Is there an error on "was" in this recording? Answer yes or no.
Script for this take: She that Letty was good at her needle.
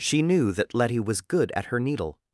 no